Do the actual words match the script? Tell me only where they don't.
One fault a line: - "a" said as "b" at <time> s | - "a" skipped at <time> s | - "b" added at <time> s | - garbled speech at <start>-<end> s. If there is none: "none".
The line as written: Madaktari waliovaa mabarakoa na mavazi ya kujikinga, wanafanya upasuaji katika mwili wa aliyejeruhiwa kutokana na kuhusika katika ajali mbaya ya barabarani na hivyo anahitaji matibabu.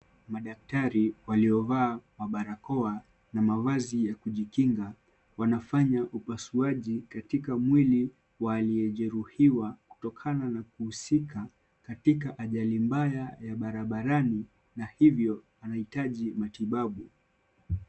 none